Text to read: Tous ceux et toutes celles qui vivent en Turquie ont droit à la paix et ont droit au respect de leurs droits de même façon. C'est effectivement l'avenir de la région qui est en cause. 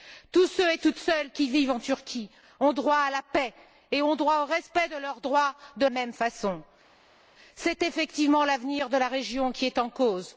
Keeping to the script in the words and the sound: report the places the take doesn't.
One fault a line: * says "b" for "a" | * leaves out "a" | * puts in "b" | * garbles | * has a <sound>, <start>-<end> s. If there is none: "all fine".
all fine